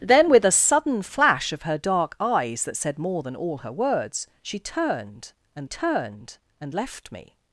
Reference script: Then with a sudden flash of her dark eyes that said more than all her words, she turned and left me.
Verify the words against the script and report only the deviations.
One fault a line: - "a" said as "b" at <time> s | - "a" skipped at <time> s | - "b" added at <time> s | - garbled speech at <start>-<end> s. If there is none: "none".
- "turned and" added at 5.6 s